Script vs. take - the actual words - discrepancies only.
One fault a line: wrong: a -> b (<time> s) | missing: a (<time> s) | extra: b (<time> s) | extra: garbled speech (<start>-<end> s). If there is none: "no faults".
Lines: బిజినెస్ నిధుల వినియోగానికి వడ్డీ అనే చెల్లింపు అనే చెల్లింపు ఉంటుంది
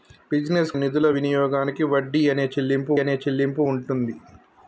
no faults